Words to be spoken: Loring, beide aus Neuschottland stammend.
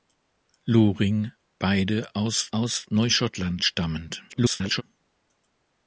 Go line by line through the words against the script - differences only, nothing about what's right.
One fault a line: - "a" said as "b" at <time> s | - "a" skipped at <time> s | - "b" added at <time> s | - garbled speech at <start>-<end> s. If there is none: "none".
- "aus" added at 2.5 s
- garbled speech at 4.3-4.8 s